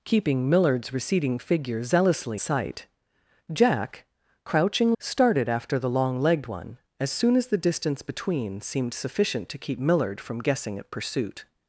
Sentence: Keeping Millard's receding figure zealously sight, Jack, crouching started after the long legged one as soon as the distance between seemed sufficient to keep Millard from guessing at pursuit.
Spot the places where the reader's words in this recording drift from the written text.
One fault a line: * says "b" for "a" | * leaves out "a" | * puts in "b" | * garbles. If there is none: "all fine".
all fine